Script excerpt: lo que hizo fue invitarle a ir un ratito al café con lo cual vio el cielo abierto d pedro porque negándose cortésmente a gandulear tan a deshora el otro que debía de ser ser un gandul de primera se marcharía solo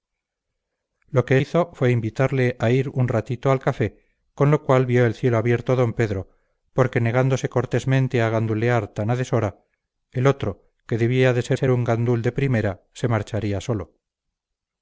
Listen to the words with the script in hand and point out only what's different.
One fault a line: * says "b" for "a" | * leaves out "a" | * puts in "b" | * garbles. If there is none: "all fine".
all fine